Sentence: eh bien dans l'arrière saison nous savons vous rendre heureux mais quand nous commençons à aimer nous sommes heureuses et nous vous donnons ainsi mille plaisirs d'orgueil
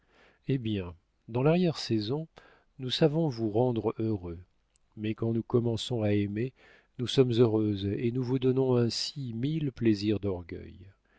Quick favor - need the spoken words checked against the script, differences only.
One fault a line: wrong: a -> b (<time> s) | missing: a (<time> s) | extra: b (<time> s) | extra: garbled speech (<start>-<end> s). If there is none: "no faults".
no faults